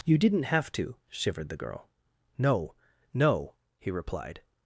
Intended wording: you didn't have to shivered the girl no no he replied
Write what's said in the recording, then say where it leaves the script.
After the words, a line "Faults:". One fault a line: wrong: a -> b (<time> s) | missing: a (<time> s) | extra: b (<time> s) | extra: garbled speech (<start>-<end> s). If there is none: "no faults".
you didn't have to shivered the girl no no he replied
Faults:
no faults